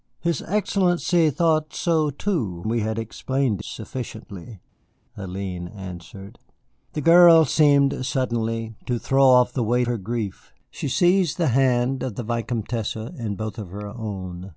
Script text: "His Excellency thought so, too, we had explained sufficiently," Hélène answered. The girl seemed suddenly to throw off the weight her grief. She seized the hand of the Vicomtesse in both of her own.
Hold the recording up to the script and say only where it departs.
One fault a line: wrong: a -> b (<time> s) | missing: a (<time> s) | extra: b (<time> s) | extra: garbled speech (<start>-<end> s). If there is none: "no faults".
no faults